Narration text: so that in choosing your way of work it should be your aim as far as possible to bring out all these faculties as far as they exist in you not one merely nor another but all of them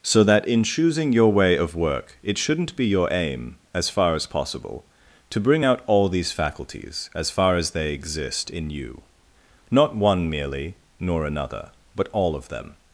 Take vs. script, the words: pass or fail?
fail